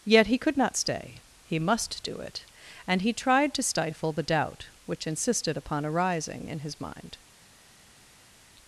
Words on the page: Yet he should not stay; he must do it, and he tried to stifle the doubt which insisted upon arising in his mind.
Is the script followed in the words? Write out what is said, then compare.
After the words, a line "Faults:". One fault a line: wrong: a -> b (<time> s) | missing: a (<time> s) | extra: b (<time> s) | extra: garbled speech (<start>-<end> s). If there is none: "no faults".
Yet he could not stay; he must do it, and he tried to stifle the doubt which insisted upon arising in his mind.
Faults:
wrong: should -> could (0.4 s)